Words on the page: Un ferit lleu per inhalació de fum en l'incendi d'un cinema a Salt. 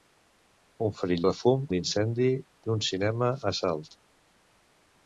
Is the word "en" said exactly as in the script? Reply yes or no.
no